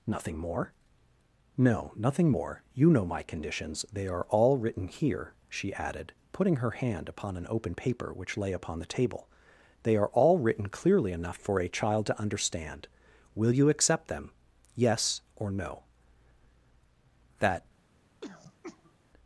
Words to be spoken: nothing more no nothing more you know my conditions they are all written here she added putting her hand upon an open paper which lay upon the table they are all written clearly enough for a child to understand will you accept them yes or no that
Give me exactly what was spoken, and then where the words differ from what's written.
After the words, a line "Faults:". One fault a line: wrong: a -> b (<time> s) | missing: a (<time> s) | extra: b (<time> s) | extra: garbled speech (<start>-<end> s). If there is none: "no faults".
nothing more no nothing more you know my conditions they are all written here she added putting her hand upon an open paper which lay upon the table they are all written clearly enough for a child to understand will you accept them yes or no that
Faults:
no faults